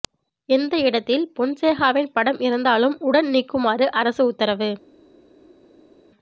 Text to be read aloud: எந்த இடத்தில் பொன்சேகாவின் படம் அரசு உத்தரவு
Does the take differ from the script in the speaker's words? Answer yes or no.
yes